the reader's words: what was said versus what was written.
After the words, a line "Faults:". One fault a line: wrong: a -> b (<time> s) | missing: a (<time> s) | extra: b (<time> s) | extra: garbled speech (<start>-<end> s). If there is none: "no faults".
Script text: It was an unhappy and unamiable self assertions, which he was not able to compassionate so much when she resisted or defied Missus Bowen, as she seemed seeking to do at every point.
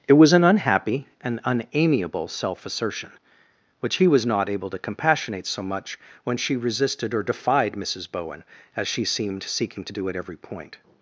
It was an unhappy and unamiable self assertion, which he was not able to compassionate so much when she resisted or defied Missus Bowen, as she seemed seeking to do at every point.
Faults:
wrong: assertions -> assertion (2.6 s)